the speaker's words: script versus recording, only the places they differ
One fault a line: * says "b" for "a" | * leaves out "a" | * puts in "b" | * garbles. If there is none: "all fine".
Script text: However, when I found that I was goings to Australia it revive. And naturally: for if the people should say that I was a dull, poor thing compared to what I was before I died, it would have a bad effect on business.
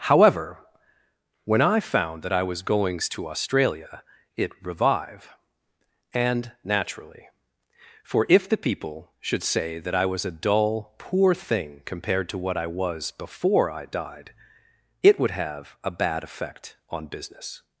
all fine